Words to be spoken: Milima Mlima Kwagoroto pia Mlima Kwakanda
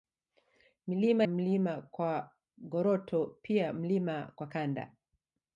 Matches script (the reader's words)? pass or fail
pass